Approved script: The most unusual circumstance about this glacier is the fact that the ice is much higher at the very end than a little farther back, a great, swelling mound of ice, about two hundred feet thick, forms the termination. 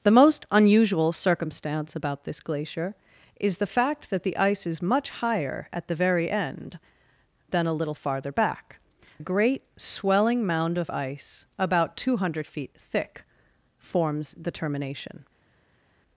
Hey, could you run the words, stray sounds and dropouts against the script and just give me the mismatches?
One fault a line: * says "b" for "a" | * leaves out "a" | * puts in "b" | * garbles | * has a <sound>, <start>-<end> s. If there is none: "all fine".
all fine